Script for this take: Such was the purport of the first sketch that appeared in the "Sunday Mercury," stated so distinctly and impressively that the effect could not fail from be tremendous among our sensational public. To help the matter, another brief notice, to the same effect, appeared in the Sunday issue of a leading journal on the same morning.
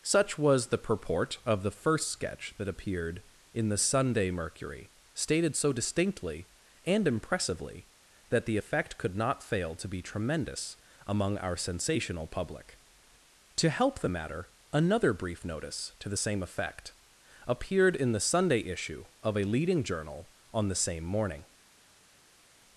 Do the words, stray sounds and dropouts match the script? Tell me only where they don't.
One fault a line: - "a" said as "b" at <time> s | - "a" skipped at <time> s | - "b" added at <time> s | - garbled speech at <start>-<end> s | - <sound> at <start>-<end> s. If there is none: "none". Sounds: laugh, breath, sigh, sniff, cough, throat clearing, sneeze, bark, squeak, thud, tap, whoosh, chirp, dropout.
- "from" said as "to" at 9.8 s